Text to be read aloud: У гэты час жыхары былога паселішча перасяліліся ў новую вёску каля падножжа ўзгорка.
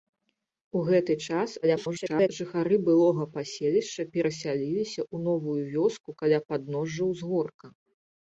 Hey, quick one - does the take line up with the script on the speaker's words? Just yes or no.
no